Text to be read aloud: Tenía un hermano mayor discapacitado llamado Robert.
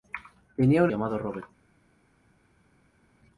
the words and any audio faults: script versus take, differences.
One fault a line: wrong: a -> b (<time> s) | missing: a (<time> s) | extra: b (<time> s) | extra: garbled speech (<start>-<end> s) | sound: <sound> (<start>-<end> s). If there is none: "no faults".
missing: hermano mayor discapacitado (0.9 s)